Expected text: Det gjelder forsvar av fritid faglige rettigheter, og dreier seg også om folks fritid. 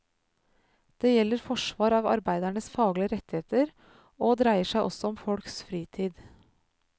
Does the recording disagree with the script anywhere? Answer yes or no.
yes